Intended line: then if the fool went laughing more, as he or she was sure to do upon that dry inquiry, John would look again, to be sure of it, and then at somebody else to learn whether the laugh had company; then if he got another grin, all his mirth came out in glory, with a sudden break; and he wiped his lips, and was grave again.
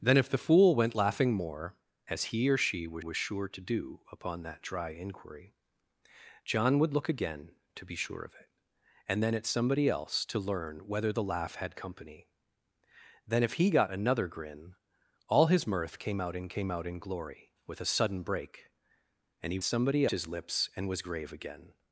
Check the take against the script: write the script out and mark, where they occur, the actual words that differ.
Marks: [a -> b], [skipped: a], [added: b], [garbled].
then if the fool went laughing more, as he or she was [added: was] sure to do upon that dry inquiry, John would look again, to be sure of it, and then at somebody else to learn whether the laugh had company; then if he got another grin, all his mirth came out in [added: came out in] glory, with a sudden break; and he [wiped -> somebody] his lips, and was grave again.